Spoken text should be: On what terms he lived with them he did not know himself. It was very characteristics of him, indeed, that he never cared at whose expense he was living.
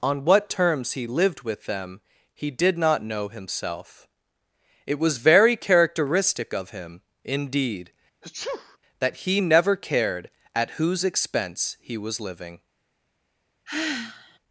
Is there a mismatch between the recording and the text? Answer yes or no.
yes